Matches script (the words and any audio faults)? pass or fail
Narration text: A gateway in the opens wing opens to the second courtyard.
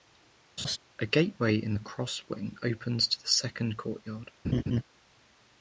fail